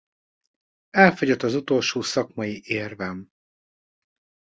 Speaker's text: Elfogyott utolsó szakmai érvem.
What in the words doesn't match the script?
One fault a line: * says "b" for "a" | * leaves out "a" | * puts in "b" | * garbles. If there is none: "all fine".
* puts in "az"